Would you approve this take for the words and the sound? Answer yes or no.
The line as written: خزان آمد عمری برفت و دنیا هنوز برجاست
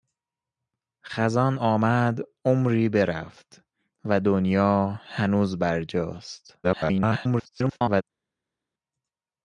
no